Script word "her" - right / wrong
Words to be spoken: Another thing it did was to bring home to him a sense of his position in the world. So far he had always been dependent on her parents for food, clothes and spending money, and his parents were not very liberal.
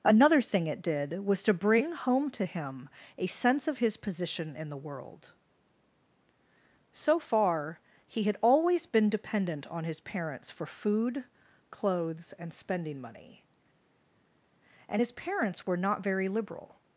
wrong